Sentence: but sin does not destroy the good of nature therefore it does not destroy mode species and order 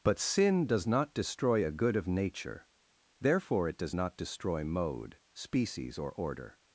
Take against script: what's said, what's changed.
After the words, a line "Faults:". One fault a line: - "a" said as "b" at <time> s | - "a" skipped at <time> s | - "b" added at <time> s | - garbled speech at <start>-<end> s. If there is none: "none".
but sin does not destroy a good of nature therefore it does not destroy mode species or order
Faults:
- "the" said as "a" at 1.6 s
- "and" said as "or" at 6.0 s